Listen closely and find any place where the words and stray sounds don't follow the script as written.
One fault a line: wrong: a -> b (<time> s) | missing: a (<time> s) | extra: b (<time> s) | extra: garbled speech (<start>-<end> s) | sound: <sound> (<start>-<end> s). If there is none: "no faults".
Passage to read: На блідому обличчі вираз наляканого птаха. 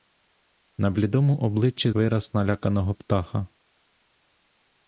no faults